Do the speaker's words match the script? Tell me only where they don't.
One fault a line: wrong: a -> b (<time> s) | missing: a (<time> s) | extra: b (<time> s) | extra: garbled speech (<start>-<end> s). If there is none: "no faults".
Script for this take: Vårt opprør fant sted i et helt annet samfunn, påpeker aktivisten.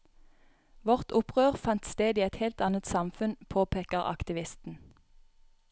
no faults